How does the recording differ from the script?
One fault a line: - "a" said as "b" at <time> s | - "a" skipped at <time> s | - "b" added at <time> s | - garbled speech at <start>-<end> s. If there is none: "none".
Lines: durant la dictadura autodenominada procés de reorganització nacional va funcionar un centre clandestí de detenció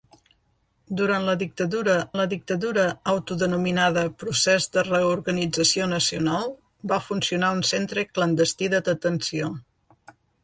- "la dictadura" added at 2.2 s